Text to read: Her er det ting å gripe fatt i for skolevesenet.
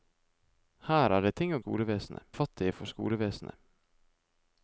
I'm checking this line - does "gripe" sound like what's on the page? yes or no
no